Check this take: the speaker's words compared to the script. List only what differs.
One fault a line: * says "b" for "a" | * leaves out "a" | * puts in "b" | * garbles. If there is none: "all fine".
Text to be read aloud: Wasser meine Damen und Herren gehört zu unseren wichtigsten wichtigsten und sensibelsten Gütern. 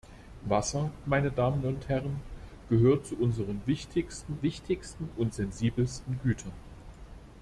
all fine